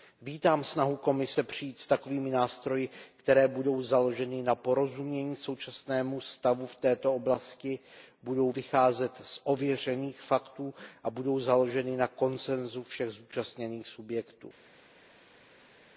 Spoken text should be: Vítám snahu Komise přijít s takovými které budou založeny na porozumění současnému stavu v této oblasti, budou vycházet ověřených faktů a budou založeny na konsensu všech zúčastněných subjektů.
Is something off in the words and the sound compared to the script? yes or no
yes